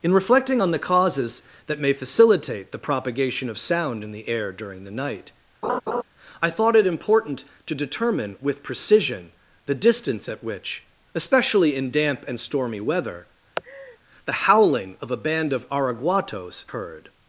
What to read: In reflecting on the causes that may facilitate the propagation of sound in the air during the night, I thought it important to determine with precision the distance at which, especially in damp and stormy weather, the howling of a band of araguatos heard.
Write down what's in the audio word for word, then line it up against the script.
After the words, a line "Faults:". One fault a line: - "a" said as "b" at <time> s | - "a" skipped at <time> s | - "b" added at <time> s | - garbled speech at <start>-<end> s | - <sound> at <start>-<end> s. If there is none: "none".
In reflecting on the causes that may facilitate the propagation of sound in the air during the night, I thought it important to determine with precision the distance at which, especially in damp and stormy weather, the howling of a band of araguatos heard.
Faults:
- laugh at 5.6-6.0 s
- laugh at 13.6-14.0 s